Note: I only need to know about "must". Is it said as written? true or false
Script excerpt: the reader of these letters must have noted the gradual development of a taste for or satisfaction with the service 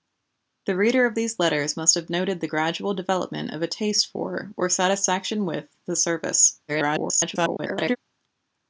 true